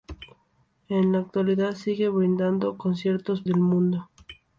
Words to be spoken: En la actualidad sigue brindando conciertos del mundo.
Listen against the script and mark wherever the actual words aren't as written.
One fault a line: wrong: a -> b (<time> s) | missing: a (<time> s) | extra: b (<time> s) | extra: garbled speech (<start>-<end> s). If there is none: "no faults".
no faults